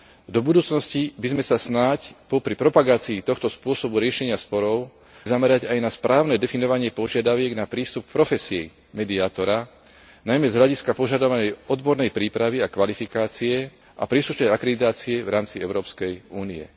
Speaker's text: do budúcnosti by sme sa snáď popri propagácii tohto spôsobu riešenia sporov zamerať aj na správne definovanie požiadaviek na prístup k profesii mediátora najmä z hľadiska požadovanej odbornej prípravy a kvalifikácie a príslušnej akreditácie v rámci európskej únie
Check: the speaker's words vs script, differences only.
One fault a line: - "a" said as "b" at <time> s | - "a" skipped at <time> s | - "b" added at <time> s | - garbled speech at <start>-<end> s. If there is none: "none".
none